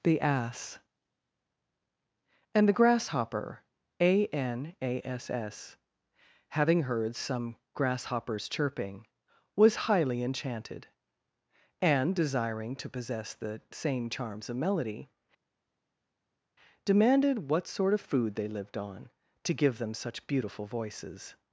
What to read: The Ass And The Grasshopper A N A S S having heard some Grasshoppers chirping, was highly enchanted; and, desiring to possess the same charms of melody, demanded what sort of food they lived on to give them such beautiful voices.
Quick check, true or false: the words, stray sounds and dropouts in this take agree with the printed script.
true